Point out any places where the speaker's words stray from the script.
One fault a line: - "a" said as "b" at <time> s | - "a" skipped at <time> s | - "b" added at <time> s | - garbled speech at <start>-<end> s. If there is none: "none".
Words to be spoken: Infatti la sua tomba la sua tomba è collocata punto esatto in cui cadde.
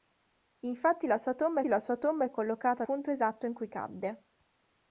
none